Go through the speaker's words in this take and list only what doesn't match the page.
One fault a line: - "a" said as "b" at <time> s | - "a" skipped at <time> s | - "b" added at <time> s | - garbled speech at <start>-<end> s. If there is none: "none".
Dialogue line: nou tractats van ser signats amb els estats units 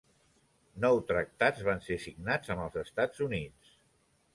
none